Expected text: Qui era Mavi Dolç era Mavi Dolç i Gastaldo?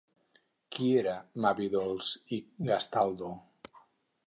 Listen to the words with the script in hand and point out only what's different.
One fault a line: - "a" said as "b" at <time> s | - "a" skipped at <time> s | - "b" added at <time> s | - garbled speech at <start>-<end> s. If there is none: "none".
- "era Mavi Dolç" skipped at 2.1 s